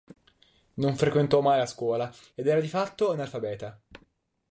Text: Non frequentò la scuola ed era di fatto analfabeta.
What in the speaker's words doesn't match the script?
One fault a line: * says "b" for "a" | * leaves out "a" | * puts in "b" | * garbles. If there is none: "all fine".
* puts in "mai"